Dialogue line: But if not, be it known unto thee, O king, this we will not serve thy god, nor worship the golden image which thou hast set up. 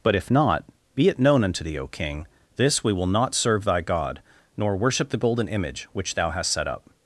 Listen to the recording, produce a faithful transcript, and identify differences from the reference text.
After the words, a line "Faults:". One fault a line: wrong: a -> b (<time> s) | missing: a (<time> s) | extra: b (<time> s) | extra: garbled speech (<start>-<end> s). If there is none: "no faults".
But if not, be it known unto thee, O king, this we will not serve thy god, nor worship the golden image which thou hast set up.
Faults:
no faults